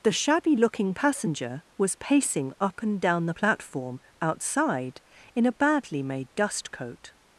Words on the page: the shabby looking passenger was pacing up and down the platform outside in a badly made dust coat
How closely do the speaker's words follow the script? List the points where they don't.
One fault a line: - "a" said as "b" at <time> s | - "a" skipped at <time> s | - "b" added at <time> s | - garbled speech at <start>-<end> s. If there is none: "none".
none